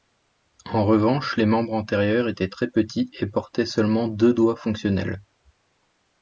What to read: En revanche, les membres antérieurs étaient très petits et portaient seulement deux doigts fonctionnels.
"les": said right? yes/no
yes